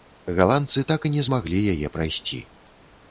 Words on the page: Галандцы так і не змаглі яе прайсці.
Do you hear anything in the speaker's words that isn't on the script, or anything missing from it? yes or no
no